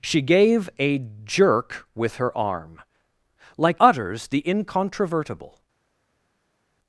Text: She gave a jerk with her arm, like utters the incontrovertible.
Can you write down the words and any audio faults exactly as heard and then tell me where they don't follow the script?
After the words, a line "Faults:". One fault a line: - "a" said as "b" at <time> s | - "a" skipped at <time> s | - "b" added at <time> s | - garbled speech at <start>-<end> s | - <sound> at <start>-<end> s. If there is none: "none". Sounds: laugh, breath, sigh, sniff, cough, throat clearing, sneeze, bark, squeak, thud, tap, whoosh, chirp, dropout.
She gave a jerk with her arm, like utters the incontrovertible.
Faults:
none